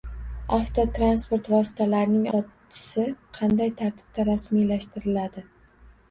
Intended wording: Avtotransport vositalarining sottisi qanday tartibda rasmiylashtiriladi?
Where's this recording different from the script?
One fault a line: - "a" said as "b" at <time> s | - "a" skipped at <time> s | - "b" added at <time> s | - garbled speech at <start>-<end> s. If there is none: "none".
none